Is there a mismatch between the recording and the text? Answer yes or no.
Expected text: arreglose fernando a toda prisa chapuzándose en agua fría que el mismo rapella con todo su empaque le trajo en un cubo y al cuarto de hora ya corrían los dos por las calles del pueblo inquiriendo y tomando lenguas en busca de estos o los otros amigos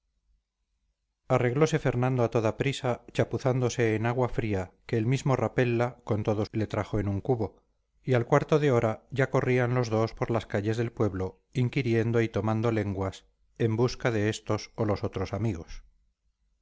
yes